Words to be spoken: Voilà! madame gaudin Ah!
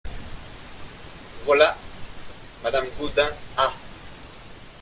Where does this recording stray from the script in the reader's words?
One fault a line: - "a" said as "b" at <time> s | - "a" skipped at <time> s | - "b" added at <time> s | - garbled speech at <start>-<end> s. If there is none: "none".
none